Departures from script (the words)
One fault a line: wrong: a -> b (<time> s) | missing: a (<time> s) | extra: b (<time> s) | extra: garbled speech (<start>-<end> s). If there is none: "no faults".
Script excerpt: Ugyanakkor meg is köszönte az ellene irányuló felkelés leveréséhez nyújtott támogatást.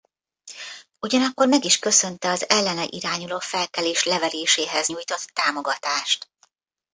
no faults